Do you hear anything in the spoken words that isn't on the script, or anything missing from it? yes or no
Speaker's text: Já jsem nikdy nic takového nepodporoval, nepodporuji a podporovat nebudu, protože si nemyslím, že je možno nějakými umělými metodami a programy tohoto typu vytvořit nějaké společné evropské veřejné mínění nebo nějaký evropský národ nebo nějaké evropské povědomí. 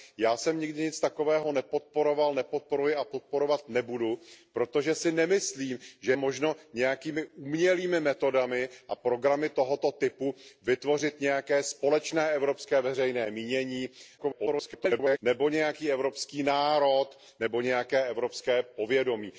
yes